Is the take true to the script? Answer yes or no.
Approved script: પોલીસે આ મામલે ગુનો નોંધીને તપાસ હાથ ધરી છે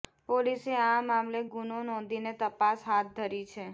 yes